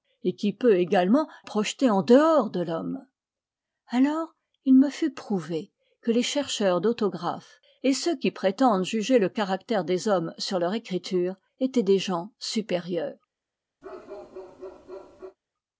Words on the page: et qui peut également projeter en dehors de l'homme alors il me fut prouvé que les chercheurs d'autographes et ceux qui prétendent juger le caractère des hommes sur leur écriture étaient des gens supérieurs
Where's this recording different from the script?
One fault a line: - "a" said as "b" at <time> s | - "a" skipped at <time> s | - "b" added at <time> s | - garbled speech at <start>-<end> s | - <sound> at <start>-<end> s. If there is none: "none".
- bark at 13.8-15.4 s